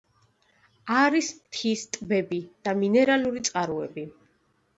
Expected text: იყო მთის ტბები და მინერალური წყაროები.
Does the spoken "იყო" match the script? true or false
false